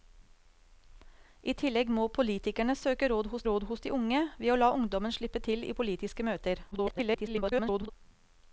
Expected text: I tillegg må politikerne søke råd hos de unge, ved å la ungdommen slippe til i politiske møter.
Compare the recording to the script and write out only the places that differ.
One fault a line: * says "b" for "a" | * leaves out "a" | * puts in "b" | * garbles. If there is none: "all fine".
* puts in "råd hos"
* garbles